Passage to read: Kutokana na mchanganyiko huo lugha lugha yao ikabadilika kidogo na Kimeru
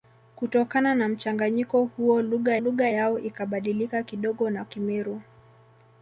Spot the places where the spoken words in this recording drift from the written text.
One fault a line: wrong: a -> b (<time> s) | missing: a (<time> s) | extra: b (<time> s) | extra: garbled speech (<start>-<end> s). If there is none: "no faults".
no faults